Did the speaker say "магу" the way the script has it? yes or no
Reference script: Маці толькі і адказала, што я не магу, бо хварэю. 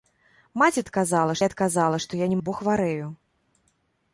no